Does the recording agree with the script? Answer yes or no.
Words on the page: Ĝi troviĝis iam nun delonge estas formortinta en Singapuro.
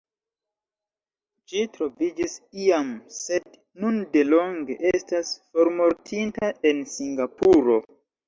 no